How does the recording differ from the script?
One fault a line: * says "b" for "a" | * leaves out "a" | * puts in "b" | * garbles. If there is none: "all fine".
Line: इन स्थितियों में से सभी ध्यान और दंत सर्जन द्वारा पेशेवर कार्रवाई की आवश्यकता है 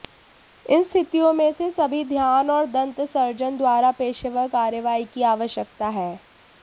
all fine